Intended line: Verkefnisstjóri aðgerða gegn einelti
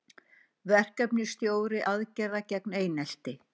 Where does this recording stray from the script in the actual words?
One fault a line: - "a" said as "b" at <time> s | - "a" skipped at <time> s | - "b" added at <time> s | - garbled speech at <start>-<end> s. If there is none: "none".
none